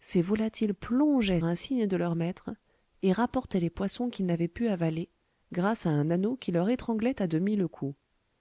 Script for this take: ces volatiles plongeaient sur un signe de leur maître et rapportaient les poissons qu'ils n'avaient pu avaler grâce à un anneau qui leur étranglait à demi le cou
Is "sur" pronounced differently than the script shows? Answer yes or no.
yes